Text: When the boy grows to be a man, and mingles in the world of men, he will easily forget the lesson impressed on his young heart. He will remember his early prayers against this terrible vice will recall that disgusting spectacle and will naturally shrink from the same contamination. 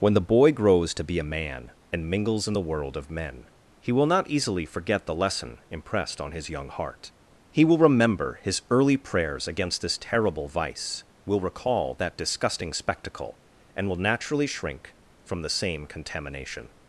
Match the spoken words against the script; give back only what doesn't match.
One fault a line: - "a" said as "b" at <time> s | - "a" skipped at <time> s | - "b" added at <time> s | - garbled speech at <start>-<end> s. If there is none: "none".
- "not" added at 4.1 s